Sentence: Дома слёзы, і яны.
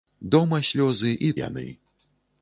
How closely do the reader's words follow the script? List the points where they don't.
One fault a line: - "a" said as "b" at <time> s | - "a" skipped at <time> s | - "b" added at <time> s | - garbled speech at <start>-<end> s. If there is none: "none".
none